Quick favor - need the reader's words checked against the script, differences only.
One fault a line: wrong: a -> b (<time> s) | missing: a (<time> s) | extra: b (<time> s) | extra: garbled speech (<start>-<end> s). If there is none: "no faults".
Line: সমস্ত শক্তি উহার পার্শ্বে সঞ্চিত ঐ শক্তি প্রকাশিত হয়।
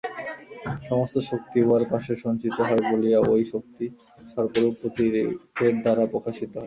extra: হয় বলিয়া (2.6 s)
extra: সর্পরূপ প্রতীকের দ্বারা (4.3 s)